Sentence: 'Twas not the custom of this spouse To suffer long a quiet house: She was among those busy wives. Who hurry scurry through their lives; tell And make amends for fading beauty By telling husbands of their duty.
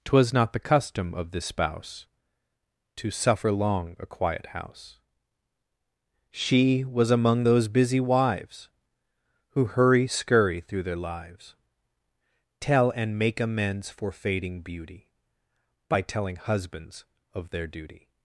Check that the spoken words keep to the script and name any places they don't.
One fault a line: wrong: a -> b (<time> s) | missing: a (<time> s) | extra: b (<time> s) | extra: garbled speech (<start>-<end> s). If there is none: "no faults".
no faults